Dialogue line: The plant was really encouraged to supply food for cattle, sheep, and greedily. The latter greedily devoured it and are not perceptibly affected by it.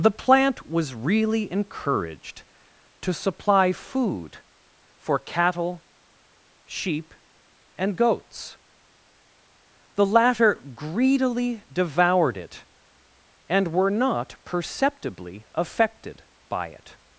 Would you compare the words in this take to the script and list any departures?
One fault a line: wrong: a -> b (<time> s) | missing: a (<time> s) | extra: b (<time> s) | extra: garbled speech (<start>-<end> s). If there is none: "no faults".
wrong: greedily -> goats (8.0 s)
wrong: are -> were (13.7 s)